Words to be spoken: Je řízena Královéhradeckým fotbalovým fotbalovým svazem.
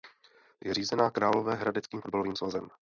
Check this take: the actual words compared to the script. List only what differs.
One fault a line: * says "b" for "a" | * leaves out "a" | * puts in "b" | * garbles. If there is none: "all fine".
* leaves out "fotbalovým"